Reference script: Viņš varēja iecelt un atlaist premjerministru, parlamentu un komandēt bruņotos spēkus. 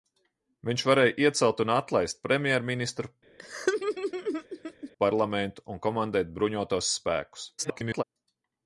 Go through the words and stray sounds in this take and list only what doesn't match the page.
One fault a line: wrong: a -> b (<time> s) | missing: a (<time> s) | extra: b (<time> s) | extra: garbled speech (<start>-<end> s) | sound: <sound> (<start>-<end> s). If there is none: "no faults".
sound: laugh (3.4-4.9 s)
extra: garbled speech (7.6-8.0 s)